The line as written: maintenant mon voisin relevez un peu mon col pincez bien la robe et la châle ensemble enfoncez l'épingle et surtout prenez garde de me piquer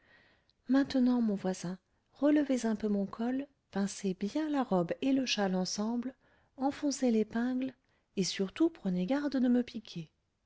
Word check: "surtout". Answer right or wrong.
right